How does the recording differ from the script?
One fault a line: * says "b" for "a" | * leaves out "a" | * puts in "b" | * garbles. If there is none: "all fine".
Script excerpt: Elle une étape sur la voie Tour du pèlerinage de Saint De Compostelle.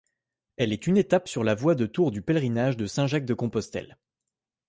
* puts in "est"
* puts in "de"
* puts in "Jacques"